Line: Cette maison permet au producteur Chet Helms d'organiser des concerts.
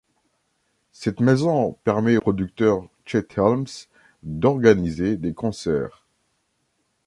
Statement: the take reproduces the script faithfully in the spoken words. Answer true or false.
false